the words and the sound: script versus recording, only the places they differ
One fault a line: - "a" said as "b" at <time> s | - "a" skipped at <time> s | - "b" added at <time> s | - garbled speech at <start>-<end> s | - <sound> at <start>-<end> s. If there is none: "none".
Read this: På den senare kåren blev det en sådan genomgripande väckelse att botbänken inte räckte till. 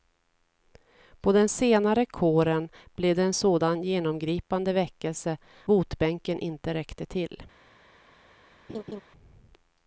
- "att" skipped at 5.4 s
- laugh at 8.7-9.0 s